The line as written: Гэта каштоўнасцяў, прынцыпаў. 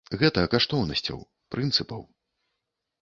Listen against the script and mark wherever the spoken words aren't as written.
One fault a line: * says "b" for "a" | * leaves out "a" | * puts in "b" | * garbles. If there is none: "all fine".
all fine